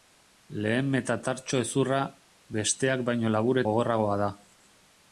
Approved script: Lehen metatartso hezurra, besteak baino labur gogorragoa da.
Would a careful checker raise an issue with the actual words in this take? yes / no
no